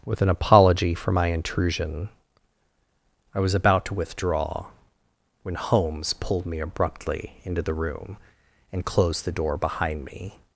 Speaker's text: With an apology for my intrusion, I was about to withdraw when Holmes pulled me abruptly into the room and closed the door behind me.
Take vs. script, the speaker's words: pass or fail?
pass